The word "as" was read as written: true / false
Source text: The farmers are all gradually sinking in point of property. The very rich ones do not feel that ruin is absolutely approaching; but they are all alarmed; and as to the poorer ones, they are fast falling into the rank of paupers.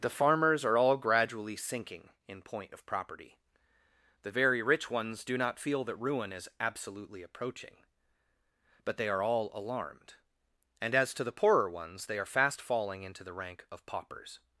true